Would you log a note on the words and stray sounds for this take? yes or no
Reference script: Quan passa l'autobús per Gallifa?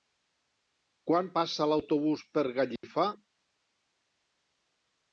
yes